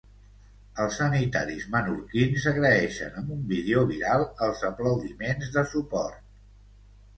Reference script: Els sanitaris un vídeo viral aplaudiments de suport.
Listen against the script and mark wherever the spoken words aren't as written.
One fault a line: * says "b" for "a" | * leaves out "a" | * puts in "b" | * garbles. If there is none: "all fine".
* puts in "menorquins agraeixen amb"
* puts in "els"